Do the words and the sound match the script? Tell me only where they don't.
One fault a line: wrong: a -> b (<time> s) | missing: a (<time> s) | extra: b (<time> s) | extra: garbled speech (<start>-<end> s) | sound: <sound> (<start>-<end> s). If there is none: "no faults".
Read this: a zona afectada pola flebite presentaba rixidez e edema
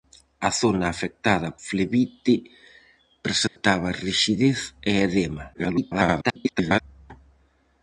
missing: pola (1.5 s)
sound: dropout (3.5-3.6 s)
extra: garbled speech (5.5-6.8 s)